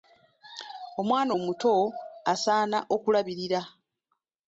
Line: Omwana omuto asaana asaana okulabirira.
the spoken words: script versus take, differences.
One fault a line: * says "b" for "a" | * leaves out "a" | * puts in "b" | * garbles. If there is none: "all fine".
* leaves out "asaana"